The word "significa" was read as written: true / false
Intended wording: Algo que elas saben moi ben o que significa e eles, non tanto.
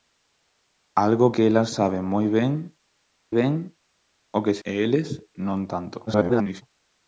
false